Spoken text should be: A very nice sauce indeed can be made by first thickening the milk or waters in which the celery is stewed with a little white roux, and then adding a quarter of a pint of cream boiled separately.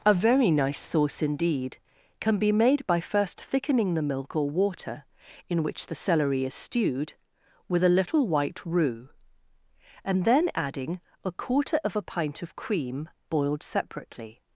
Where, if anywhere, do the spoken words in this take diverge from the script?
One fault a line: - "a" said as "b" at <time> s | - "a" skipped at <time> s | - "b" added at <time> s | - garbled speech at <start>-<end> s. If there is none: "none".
- "waters" said as "water" at 4.5 s